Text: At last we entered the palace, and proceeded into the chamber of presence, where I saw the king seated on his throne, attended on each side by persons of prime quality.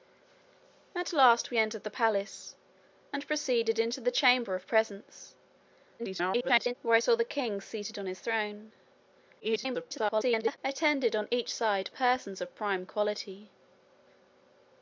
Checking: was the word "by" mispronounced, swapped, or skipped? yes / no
yes